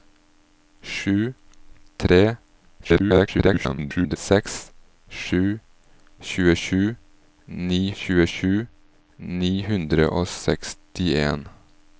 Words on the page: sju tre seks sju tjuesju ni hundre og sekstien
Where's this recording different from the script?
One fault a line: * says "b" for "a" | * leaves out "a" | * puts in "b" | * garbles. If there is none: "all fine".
* garbles
* puts in "tjuesju ni"